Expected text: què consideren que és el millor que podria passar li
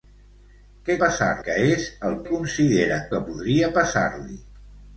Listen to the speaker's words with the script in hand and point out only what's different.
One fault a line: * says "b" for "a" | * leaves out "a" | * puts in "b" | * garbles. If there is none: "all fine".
* says "passar" for "consideren"
* says "consideren" for "millor"